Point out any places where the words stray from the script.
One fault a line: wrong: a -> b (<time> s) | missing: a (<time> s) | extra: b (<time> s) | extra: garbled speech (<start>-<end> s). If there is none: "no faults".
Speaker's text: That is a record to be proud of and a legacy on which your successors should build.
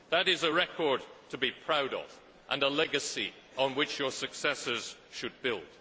no faults